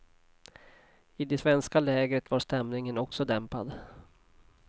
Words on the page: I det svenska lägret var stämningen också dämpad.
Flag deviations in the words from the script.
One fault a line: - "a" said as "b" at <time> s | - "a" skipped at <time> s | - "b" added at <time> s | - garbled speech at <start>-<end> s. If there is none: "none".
none